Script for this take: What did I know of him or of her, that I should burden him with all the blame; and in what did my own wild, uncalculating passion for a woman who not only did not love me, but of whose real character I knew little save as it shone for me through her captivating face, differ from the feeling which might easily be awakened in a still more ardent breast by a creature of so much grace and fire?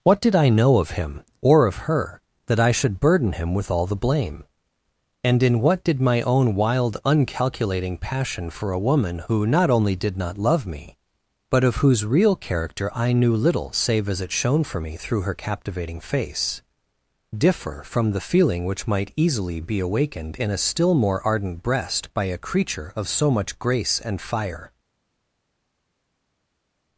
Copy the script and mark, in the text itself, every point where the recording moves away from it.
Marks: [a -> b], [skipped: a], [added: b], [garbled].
What did I know of him or of her, that I should burden him with all the blame; and in what did my own wild, uncalculating passion for a woman who not only did not love me, but of whose real character I knew little save as it shone for me through her captivating face, differ from the feeling which might easily be awakened in a still more ardent breast by a creature of so much grace and fire?